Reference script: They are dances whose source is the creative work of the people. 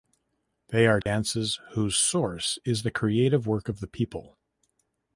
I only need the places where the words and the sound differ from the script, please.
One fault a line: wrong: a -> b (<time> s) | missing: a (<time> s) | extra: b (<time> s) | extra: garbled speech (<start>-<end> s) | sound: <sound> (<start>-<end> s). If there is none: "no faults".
sound: dropout (1.0-1.1 s)